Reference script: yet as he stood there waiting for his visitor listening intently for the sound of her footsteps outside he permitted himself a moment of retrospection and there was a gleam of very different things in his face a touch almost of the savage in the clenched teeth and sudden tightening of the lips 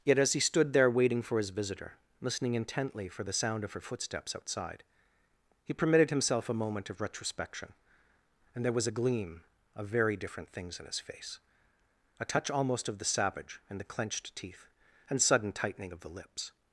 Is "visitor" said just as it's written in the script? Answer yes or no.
yes